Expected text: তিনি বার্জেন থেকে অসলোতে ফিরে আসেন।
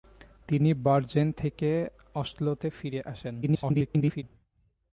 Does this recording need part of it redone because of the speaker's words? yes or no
yes